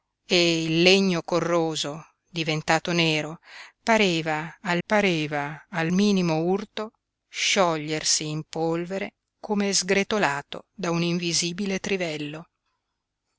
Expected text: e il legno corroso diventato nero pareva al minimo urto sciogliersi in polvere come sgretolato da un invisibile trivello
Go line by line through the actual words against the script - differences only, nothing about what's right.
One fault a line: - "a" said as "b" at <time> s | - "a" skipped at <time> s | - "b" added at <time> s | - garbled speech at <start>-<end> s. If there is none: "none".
- "pareva al" added at 4.9 s